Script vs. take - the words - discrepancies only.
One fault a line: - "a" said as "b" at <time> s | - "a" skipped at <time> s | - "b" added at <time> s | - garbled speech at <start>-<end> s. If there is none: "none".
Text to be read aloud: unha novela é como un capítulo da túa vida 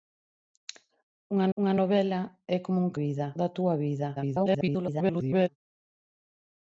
- "unha" added at 1.6 s
- "capítulo" said as "vida" at 3.0 s
- garbled speech at 4.2-5.5 s